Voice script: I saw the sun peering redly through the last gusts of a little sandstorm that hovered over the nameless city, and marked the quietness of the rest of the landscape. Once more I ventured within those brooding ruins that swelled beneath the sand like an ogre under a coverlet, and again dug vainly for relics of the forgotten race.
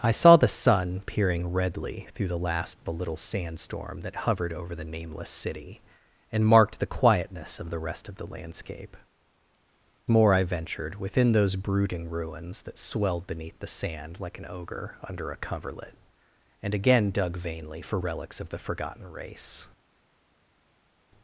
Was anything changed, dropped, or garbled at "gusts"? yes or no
yes